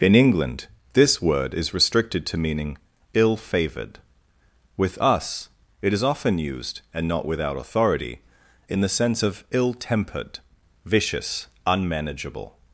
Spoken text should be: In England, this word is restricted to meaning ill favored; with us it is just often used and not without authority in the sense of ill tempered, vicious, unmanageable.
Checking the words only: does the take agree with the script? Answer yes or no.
no